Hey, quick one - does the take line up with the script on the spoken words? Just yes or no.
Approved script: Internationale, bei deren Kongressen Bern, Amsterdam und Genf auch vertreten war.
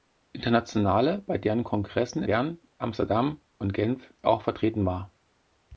yes